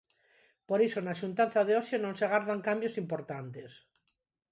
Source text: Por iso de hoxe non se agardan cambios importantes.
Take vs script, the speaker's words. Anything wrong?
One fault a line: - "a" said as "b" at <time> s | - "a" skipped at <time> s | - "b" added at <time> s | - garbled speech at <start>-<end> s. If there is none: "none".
- "na xuntanza" added at 1.0 s